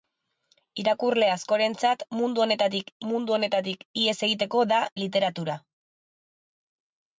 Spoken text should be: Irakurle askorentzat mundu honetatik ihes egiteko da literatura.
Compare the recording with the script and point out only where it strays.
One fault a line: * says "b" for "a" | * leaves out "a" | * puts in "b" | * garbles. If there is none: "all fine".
* puts in "mundu honetatik"